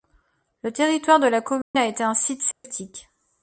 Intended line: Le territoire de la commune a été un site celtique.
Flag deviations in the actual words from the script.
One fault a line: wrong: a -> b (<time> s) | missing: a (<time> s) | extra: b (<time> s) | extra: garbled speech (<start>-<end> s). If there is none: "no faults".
no faults